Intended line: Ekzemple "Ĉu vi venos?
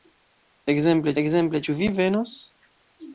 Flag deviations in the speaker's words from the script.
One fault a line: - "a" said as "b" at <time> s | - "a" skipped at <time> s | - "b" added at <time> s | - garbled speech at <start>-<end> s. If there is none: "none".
- "ekzemple" added at 1.2 s